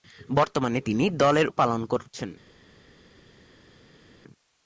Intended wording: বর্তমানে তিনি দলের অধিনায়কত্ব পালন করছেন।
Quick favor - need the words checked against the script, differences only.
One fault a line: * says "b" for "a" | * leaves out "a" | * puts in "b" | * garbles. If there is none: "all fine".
* leaves out "অধিনায়কত্ব"